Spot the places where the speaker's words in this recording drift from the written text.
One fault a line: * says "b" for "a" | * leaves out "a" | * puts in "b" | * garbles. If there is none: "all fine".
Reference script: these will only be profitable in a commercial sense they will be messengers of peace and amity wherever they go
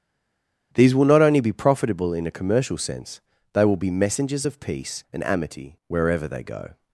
* puts in "not"